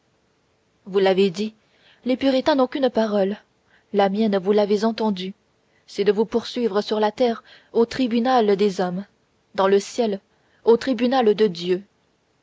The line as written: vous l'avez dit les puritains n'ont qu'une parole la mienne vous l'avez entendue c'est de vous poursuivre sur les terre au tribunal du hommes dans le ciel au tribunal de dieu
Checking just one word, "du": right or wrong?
wrong